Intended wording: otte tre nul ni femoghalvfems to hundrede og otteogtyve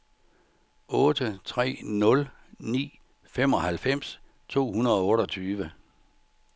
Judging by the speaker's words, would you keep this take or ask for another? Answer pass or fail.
pass